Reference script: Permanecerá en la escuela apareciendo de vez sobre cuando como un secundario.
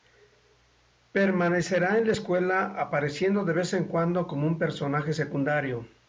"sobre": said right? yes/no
no